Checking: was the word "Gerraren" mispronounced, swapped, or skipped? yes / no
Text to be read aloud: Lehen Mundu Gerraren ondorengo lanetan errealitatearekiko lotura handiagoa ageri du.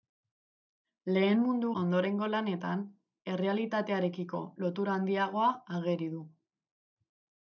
yes